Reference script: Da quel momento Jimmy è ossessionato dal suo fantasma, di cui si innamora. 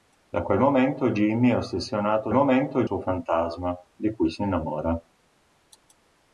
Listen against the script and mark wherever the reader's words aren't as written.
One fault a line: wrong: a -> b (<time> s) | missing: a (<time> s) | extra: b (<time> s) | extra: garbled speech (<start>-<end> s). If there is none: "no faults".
wrong: dal -> momento (2.3 s)